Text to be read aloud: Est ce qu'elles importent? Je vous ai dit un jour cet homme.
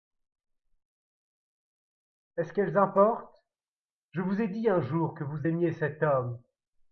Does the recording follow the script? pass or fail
fail